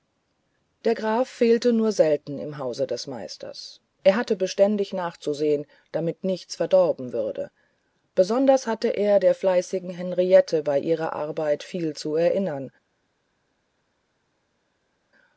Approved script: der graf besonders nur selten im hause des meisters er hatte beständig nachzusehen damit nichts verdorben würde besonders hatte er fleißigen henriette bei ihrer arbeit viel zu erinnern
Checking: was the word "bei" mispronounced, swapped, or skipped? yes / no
no